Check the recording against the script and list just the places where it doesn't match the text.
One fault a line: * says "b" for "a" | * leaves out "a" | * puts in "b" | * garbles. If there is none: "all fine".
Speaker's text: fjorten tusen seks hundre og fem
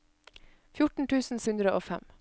* leaves out "seks"